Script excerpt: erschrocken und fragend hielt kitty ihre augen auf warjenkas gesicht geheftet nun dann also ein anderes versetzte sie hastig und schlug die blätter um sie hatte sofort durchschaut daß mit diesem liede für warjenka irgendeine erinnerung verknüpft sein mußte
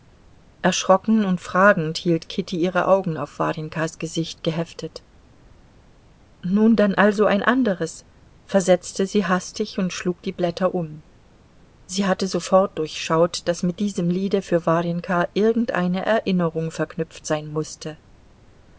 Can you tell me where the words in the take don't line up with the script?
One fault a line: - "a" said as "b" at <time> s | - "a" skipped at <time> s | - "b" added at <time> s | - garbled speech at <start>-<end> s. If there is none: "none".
none